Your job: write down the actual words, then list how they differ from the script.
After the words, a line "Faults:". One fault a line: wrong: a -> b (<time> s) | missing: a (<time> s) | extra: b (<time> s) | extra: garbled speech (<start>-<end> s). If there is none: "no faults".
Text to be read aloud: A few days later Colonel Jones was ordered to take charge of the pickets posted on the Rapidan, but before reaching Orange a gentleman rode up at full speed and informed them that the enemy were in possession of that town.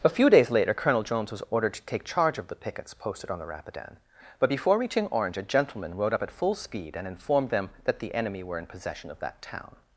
A few days later Colonel Jones was ordered to take charge of the pickets posted on the Rapidan, but before reaching Orange a gentleman rode up at full speed and informed them that the enemy were in possession of that town.
Faults:
no faults